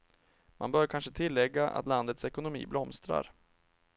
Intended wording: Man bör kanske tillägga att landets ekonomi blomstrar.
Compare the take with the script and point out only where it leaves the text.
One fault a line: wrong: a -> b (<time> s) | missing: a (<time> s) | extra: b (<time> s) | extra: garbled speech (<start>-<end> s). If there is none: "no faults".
no faults